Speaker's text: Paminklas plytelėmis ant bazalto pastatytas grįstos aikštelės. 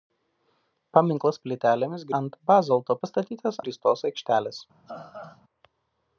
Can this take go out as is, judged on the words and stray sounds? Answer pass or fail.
fail